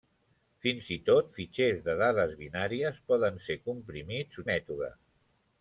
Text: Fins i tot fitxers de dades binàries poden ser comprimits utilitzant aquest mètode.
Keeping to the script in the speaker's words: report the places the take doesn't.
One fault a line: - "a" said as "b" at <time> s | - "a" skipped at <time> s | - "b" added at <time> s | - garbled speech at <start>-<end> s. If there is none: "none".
- "utilitzant aquest" skipped at 4.4 s